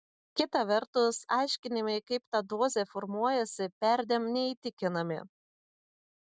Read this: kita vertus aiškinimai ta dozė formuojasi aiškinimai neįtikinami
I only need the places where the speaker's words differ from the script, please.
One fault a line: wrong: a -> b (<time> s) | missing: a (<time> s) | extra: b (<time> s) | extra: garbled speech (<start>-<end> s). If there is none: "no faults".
extra: kaip (2.1 s)
wrong: aiškinimai -> perdėm (3.9 s)